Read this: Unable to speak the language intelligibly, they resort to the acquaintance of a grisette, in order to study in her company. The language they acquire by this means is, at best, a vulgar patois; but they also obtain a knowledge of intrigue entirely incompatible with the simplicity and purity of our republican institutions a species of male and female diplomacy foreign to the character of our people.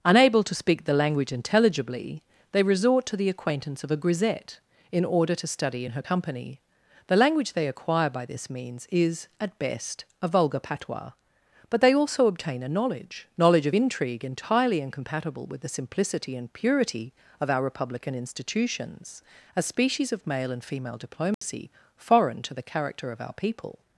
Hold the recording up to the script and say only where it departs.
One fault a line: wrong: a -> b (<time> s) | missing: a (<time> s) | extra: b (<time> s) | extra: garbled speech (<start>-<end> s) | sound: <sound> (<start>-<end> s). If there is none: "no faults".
extra: knowledge (13.4 s)
sound: dropout (21.3-21.4 s)